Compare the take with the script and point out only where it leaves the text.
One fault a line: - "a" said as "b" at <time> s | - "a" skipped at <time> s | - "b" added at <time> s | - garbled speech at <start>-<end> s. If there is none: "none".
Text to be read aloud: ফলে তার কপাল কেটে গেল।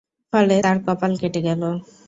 none